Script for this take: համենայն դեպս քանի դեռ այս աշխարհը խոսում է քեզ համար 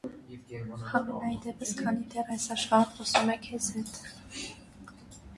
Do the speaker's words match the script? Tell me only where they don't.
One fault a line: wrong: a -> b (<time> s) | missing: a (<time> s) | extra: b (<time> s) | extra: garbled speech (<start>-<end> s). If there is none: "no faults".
wrong: համար -> հետ (3.7 s)